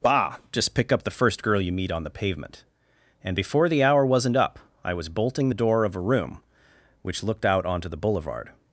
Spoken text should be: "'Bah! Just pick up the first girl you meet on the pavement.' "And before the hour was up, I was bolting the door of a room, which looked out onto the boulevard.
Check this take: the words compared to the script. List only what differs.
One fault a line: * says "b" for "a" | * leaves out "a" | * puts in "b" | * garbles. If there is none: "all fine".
* says "wasn't" for "was"